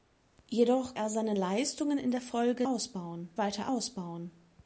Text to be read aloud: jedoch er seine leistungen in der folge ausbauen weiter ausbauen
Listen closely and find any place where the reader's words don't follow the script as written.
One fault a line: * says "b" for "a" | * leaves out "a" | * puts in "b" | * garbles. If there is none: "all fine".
all fine